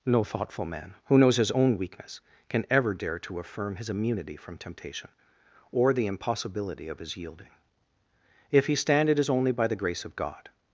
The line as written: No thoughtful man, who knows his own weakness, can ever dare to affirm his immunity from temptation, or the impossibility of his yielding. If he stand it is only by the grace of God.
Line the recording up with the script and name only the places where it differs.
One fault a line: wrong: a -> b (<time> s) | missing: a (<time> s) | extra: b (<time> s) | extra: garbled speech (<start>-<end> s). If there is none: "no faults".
no faults